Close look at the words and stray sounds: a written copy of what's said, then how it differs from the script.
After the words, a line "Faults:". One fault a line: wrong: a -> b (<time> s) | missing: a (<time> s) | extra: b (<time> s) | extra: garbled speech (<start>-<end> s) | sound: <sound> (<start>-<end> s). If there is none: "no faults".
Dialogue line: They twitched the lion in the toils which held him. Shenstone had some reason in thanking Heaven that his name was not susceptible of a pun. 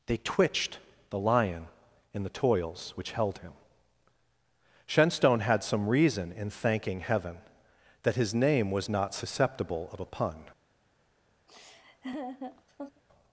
They twitched the lion in the toils which held him. Shenstone had some reason in thanking Heaven that his name was not susceptible of a pun.
Faults:
sound: laugh (11.5-13.0 s)